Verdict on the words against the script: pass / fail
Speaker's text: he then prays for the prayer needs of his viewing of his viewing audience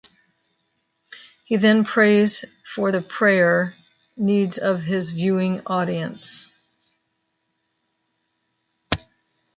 fail